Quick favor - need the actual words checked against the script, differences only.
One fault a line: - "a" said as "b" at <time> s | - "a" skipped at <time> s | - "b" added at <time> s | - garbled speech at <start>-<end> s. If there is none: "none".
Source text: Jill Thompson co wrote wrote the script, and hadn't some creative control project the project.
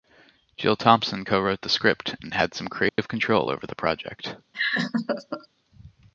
- "wrote" skipped at 1.6 s
- "hadn't" said as "had" at 2.3 s
- "project" said as "over" at 3.5 s